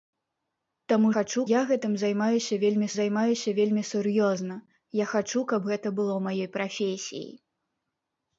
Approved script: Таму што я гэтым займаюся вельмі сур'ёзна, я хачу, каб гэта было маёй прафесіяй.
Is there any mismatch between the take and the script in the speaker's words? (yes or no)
yes